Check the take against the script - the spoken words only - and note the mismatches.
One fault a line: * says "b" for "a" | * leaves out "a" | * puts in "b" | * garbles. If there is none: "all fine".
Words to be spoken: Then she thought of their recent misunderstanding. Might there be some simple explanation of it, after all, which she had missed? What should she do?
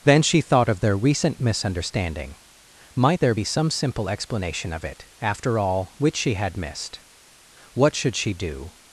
all fine